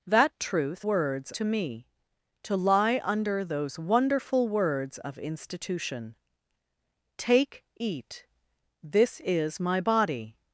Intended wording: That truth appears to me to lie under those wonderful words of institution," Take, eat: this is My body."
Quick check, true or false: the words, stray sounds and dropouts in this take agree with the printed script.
false